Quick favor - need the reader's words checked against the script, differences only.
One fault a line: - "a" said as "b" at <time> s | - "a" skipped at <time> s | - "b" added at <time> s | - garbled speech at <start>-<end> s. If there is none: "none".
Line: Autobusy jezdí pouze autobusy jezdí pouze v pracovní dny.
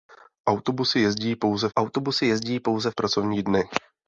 none